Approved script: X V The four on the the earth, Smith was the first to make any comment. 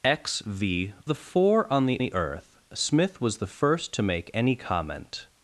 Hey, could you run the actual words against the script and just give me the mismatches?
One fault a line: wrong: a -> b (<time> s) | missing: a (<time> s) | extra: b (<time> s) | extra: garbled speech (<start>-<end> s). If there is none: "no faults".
no faults